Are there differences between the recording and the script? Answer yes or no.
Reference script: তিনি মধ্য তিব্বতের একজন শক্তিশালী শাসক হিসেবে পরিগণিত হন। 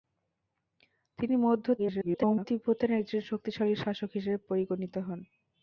yes